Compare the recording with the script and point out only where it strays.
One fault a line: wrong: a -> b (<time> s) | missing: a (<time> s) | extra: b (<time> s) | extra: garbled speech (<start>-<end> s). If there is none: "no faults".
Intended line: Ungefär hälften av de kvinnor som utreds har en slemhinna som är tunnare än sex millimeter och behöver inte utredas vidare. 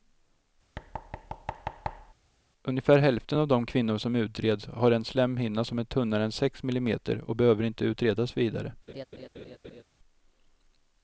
no faults